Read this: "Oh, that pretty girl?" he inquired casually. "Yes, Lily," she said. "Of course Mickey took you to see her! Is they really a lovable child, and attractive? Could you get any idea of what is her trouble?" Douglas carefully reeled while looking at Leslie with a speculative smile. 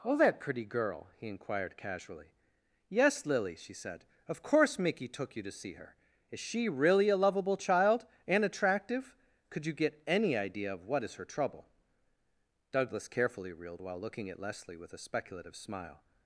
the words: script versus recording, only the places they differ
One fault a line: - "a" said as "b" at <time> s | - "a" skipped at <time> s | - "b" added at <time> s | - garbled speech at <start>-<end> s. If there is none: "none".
- "they" said as "she" at 6.4 s